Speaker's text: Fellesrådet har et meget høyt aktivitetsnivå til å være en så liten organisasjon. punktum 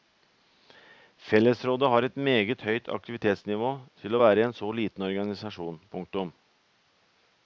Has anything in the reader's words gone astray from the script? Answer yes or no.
no